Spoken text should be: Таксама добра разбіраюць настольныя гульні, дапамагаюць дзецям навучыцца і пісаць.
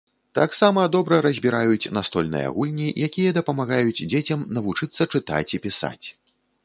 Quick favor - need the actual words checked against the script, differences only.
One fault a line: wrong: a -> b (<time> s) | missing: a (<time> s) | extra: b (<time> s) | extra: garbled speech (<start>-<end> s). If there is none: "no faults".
extra: якія (3.1 s)
extra: чытаць (5.1 s)